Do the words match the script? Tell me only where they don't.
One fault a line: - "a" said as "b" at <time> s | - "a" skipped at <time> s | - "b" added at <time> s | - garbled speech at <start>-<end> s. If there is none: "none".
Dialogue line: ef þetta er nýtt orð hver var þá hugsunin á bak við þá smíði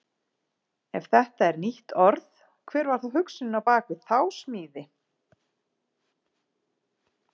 none